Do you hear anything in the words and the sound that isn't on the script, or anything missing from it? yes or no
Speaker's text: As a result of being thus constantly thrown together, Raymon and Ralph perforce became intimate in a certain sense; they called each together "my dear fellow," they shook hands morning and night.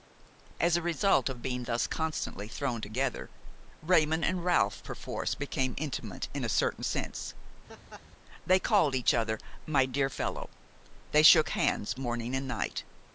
yes